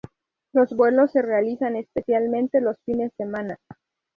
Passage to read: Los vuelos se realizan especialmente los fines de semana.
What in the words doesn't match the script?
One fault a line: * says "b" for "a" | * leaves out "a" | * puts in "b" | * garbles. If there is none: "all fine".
* leaves out "de"